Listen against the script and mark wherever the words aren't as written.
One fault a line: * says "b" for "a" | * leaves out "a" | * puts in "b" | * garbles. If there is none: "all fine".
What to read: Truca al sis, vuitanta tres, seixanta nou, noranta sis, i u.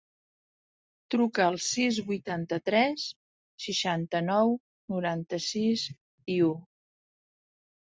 all fine